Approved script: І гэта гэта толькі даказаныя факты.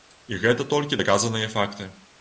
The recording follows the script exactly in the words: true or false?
false